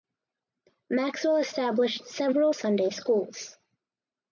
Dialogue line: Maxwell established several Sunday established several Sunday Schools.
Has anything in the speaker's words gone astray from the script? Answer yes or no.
yes